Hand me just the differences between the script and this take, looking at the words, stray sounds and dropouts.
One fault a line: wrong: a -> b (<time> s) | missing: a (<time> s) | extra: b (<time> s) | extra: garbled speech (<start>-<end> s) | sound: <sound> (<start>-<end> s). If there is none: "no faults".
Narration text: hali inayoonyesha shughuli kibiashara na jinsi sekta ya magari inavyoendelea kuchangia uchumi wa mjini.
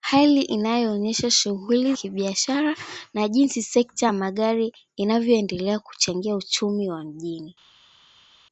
no faults